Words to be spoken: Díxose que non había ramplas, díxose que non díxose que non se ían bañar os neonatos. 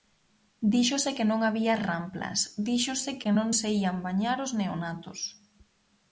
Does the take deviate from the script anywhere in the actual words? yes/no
yes